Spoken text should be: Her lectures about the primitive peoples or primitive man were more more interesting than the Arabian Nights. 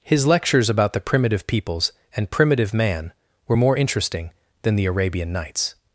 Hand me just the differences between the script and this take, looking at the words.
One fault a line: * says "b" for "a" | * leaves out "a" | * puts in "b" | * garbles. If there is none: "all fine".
* says "His" for "Her"
* says "and" for "or"
* leaves out "more"